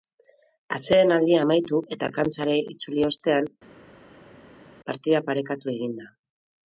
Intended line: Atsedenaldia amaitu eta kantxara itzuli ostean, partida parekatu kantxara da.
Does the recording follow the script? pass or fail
fail